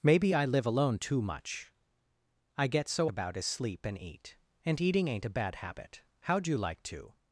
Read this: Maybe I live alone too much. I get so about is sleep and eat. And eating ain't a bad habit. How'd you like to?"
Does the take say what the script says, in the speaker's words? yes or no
yes